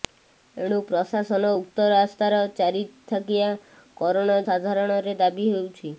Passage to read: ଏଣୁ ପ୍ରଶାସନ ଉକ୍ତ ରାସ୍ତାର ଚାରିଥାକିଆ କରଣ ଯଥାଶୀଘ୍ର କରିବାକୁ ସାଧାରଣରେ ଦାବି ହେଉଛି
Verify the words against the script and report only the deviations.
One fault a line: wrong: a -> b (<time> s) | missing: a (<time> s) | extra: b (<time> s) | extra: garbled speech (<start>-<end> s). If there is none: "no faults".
missing: ଯଥାଶୀଘ୍ର କରିବାକୁ (4.4 s)